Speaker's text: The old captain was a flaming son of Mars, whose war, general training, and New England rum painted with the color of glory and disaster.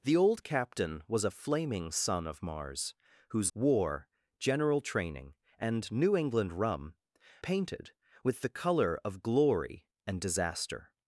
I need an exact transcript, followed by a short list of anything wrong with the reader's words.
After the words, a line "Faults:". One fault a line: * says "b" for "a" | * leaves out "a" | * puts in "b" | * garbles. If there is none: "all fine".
The old captain was a flaming son of Mars, whose war, general training, and New England rum painted with the color of glory and disaster.
Faults:
all fine